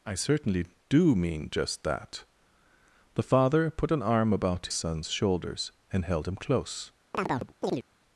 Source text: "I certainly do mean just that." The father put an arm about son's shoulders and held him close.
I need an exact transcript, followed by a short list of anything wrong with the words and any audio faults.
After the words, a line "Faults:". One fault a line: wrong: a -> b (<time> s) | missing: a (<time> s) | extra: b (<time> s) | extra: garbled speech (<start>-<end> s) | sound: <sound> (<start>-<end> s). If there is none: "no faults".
"I certainly do mean just that." The father put an arm about son's shoulders and held him close.
Faults:
sound: chirp (7.1-7.8 s)